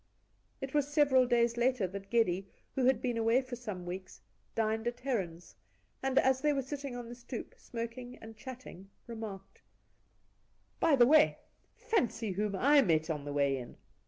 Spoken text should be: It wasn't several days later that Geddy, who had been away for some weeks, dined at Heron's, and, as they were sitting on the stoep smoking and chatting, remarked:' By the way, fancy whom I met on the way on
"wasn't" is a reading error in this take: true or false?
true